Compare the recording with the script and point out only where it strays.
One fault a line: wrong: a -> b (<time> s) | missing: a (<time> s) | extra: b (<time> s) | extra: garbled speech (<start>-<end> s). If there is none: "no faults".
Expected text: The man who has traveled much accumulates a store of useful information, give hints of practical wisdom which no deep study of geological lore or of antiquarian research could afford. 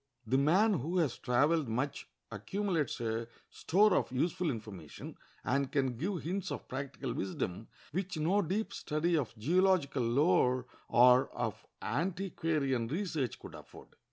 extra: and can (5.4 s)